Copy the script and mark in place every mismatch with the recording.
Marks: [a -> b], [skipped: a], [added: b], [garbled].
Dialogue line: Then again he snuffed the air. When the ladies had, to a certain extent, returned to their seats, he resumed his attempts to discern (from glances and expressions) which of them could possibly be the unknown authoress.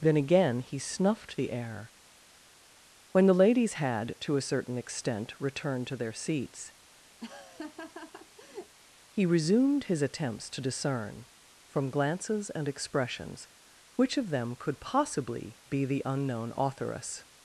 Then again he snuffed the air. When the ladies had, to a certain extent, returned to their seats, he resumed his attempts to discern (from glances and expressions) which of them could possibly be the unknown authoress.